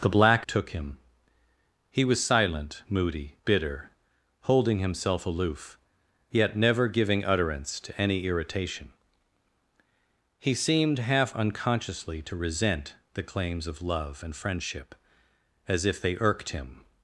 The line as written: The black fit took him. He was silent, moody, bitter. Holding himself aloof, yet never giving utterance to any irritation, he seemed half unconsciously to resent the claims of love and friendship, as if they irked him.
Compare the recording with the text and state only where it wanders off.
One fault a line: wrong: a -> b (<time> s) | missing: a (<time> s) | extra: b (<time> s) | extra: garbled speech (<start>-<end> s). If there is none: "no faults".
missing: fit (0.5 s)